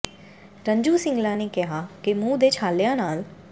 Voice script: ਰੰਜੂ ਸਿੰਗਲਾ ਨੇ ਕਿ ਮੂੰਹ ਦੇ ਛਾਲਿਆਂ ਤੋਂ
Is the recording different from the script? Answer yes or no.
yes